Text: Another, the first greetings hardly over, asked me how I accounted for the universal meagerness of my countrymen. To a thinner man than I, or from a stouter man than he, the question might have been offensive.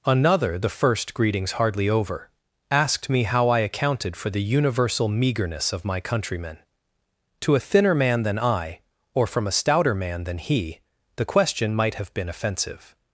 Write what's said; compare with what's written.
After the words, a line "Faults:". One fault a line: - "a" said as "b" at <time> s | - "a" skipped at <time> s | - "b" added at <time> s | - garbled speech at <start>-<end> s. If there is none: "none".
Another, the first greetings hardly over, asked me how I accounted for the universal meagerness of my countrymen. To a thinner man than I, or from a stouter man than he, the question might have been offensive.
Faults:
none